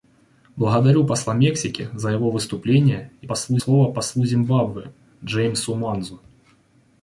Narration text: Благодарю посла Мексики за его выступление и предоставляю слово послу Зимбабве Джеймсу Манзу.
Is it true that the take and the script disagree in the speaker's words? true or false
true